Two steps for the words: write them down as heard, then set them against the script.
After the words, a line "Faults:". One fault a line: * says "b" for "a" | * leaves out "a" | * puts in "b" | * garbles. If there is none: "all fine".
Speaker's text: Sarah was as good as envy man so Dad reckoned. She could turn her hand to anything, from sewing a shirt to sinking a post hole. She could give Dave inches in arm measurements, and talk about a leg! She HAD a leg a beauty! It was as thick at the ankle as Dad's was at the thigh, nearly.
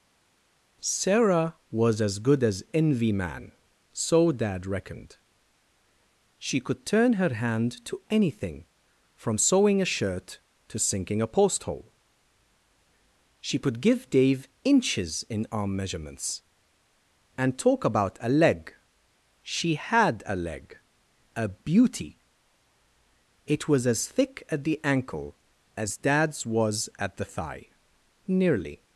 Sarah was as good as envy man so Dad reckoned. She could turn her hand to anything, from sewing a shirt to sinking a post hole. She could give Dave inches in arm measurements, and talk about a leg! She HAD a leg a beauty! It was as thick at the ankle as Dad's was at the thigh, nearly.
Faults:
all fine